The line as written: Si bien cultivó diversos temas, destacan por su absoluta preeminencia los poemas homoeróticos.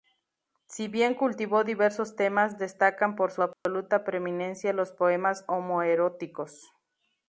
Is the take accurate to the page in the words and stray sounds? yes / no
no